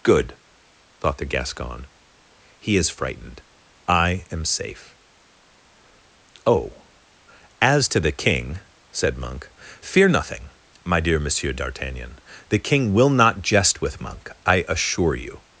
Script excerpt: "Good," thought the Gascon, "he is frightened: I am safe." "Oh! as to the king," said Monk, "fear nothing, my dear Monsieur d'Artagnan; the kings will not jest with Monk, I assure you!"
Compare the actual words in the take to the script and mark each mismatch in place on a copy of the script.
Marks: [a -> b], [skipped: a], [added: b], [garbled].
"Good," thought the Gascon, "he is frightened: I am safe." "Oh! as to the king," said Monk, "fear nothing, my dear Monsieur d'Artagnan; the [kings -> king] will not jest with Monk, I assure you!"